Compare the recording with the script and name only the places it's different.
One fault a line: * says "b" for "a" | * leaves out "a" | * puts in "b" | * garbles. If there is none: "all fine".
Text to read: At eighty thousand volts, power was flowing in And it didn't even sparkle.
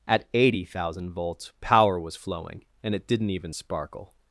* leaves out "in"